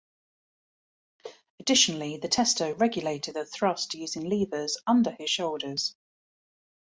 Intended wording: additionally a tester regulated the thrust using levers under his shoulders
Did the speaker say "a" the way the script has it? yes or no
no